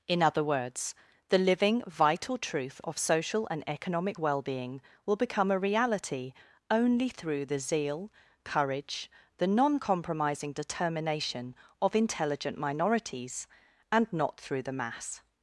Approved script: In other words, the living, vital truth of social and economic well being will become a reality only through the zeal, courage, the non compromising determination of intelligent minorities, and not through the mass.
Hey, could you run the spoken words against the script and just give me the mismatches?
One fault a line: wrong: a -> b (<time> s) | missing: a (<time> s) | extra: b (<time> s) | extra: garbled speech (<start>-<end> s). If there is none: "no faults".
no faults